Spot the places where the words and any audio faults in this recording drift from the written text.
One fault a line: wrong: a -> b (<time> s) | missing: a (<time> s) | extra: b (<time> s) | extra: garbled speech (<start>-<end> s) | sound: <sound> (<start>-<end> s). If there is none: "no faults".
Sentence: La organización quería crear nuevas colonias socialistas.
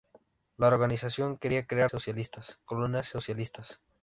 wrong: nuevas -> socialistas (1.8 s)